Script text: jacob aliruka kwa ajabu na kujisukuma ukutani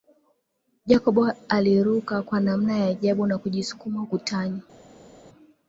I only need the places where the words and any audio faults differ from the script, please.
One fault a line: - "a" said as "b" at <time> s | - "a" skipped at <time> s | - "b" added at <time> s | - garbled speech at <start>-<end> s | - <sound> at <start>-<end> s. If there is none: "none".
- "namna ya" added at 2.4 s